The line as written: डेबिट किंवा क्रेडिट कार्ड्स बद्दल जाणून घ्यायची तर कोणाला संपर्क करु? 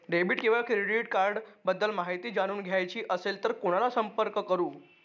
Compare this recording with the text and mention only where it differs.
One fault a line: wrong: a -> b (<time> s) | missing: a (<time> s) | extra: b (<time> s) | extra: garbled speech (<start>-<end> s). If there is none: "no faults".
extra: माहिती (1.9 s)
extra: असेल (3.1 s)